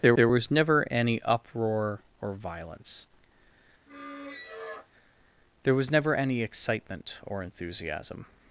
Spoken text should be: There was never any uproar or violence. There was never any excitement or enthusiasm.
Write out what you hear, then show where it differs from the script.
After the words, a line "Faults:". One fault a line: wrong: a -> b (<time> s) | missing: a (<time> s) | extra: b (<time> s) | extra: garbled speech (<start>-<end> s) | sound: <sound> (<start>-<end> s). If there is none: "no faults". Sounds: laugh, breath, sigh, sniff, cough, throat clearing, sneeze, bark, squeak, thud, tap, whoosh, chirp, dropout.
There there was never any uproar or violence. There was never any excitement or enthusiasm.
Faults:
extra: there (0.1 s)
sound: squeak (3.9-4.9 s)